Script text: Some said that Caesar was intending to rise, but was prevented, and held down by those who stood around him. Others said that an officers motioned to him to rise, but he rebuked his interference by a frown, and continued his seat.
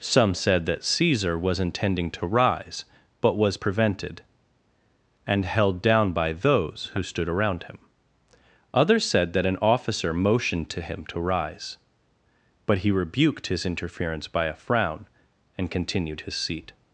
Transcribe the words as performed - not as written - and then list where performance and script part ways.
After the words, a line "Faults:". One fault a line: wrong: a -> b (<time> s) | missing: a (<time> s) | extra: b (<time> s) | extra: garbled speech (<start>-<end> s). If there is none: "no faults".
Some said that Caesar was intending to rise, but was prevented, and held down by those who stood around him. Others said that an officer motioned to him to rise, but he rebuked his interference by a frown, and continued his seat.
Faults:
wrong: officers -> officer (9.6 s)